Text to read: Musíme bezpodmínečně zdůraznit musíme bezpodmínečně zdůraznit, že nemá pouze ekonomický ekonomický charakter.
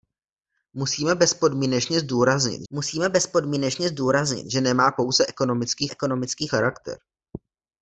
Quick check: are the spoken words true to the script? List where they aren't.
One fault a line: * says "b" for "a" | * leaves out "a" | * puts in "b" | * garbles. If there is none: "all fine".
all fine